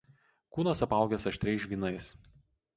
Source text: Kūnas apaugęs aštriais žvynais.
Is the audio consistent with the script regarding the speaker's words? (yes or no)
yes